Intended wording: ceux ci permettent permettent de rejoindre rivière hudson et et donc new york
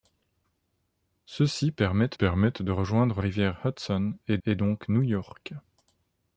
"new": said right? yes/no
yes